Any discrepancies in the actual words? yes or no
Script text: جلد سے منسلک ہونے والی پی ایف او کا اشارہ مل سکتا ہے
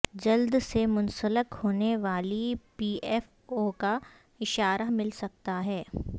no